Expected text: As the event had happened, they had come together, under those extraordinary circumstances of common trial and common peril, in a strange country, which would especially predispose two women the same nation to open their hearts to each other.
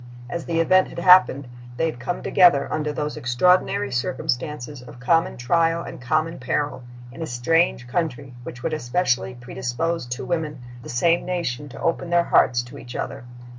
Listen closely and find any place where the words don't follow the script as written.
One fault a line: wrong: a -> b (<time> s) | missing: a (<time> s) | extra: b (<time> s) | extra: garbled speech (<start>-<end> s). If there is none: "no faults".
no faults